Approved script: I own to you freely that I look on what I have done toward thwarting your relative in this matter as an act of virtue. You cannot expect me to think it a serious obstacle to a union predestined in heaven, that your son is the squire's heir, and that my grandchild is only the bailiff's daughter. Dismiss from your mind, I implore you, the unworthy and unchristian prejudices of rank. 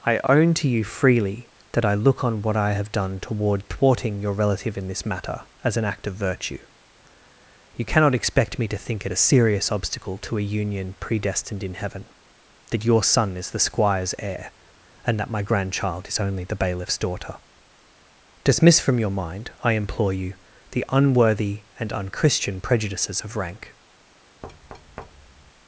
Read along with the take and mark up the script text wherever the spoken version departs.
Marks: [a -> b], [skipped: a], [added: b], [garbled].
I own to you freely that I look on what I have done toward thwarting your relative in this matter as an act of virtue. You cannot expect me to think it a serious obstacle to a union predestined in heaven, that your son is the squire's heir, and that my grandchild is only the bailiff's daughter. Dismiss from your mind, I implore you, the unworthy and unchristian prejudices of rank.